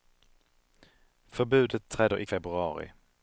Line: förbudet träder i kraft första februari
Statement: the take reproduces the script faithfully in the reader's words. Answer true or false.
false